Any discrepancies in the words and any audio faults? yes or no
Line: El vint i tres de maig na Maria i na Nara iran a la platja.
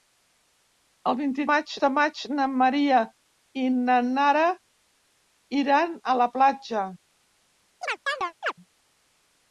yes